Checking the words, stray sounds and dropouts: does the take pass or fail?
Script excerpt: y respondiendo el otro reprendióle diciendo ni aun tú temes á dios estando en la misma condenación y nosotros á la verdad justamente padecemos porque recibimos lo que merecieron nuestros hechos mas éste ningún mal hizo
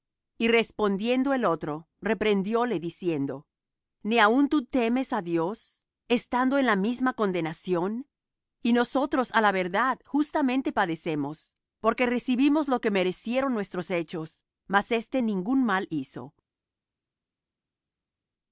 pass